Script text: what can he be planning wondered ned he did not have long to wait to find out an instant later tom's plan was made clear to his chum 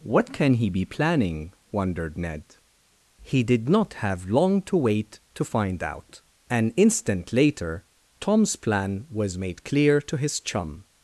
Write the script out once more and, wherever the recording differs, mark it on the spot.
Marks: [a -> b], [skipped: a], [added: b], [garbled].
what can he be planning wondered ned he did not have long to wait to find out an instant later tom's plan was made clear to his chum